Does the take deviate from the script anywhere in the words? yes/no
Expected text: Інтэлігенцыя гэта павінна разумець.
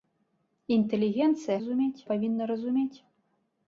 yes